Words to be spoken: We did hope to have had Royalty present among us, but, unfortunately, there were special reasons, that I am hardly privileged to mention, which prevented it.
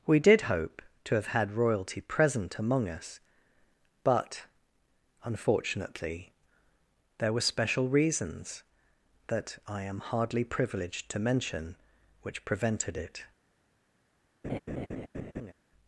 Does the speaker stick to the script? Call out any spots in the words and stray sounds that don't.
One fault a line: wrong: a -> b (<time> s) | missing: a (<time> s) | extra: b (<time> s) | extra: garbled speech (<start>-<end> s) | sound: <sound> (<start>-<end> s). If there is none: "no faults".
sound: laugh (14.4-15.5 s)